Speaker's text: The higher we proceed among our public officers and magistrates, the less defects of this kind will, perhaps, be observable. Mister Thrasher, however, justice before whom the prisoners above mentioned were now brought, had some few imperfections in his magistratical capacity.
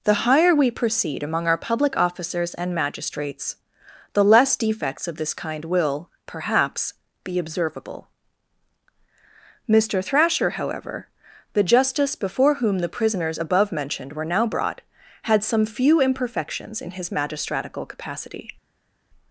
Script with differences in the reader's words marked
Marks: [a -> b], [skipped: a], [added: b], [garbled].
The higher we proceed among our public officers and magistrates, the less defects of this kind will, perhaps, be observable. Mister Thrasher, however, [added: the] justice before whom the prisoners above mentioned were now brought, had some few imperfections in his magistratical capacity.